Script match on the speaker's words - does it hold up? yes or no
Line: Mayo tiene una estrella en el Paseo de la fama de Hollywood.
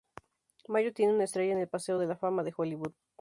yes